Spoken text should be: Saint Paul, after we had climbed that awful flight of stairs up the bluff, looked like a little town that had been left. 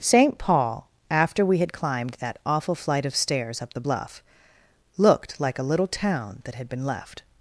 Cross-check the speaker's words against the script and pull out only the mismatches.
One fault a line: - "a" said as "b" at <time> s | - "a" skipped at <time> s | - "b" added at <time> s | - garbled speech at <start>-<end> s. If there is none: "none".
none